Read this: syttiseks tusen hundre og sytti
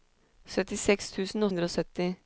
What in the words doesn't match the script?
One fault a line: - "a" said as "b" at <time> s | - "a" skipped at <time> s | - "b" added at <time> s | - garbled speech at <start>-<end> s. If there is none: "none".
none